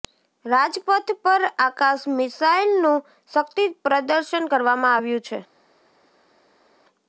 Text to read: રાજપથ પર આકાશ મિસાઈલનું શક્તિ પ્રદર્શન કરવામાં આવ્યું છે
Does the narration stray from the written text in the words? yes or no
no